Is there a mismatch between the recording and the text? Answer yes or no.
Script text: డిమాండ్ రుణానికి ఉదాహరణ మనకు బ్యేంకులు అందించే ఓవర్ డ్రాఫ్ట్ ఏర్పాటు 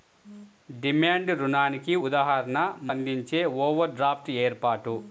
yes